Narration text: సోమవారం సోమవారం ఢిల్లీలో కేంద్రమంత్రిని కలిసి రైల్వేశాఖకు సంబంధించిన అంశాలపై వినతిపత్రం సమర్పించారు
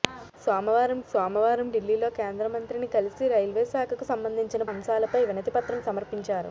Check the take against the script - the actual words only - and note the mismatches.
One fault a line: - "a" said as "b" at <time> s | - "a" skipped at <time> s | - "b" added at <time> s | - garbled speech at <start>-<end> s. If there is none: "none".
none